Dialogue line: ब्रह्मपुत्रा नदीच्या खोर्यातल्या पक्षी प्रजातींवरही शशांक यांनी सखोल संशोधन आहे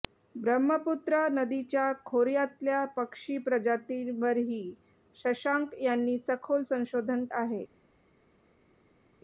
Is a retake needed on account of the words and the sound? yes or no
no